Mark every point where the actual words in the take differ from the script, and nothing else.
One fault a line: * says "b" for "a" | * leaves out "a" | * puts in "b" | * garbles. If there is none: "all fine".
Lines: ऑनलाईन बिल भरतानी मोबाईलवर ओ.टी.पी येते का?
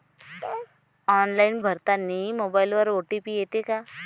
* leaves out "बिल"